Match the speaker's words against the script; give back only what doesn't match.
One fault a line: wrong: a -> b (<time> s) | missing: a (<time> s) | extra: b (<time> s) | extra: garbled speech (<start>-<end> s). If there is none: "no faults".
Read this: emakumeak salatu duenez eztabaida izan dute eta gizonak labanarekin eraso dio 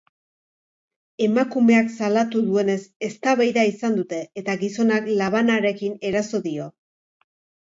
no faults